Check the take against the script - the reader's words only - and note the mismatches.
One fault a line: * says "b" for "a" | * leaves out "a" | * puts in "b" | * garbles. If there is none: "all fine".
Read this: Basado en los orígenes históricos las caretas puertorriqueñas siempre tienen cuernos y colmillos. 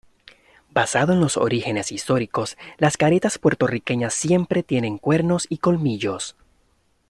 all fine